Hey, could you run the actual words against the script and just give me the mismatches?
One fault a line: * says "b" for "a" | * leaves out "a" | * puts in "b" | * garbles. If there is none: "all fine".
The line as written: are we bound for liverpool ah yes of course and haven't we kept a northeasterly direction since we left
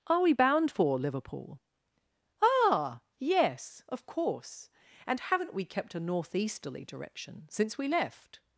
all fine